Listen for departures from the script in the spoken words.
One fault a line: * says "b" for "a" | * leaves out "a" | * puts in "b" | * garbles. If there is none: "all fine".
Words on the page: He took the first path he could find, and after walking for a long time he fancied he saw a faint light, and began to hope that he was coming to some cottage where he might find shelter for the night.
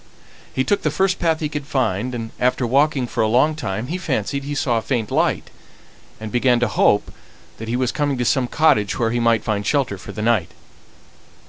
all fine